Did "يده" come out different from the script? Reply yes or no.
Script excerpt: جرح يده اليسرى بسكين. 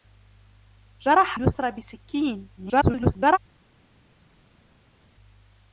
yes